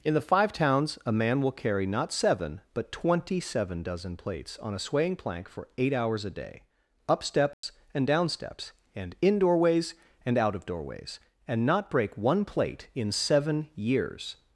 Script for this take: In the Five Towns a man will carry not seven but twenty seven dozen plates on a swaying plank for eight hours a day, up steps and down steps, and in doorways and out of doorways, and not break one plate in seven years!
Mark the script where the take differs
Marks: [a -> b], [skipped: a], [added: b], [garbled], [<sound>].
In the Five Towns a man will carry not seven but twenty seven dozen plates on a swaying plank for eight hours a day, up steps [dropout] and down steps, and in doorways and out of doorways, and not break one plate in seven years!